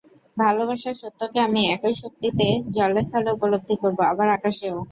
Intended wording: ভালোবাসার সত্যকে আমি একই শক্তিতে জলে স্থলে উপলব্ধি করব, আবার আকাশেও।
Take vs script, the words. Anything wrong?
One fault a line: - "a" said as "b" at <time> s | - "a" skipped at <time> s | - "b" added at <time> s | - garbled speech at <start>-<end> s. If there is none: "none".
none